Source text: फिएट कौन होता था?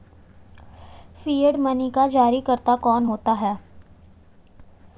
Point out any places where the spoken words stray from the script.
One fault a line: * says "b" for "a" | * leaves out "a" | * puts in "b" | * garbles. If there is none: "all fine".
* puts in "मनी का जारीकर्ता"
* says "है" for "था"